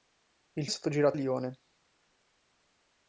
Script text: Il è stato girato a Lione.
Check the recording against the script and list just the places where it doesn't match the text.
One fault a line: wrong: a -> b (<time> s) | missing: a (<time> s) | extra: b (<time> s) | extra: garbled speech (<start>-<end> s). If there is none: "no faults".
no faults